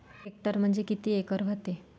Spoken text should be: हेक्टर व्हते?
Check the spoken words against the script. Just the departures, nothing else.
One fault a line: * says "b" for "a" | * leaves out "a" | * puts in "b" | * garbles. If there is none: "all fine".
* puts in "म्हणजे किती एकर"